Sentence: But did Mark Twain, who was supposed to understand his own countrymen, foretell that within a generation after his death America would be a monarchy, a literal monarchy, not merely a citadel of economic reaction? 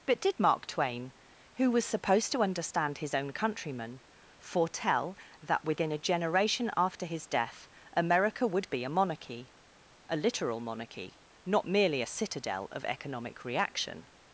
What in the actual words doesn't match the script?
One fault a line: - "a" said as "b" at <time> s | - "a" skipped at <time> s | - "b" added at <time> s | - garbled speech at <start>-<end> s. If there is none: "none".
none